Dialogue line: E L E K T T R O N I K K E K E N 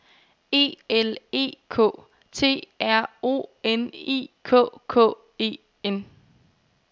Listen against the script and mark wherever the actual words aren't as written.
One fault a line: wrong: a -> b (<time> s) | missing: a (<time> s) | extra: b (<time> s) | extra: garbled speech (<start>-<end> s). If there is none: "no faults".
missing: T (2.7 s)
missing: K E (5.6 s)